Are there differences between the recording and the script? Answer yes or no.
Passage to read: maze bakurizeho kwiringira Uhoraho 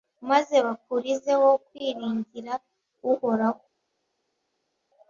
no